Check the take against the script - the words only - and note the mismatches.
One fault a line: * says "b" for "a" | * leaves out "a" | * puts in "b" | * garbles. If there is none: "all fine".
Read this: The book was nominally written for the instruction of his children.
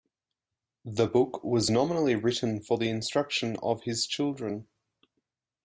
all fine